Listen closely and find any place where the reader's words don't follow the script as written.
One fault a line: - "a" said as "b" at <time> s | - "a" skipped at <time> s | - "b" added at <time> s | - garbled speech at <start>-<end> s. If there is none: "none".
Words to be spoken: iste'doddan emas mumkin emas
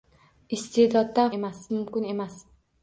none